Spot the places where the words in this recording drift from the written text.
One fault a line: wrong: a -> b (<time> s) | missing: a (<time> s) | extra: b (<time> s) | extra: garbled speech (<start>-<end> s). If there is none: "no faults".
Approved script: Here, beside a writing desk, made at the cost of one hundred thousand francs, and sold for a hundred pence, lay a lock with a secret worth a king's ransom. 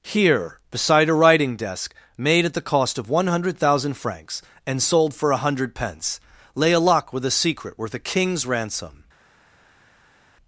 no faults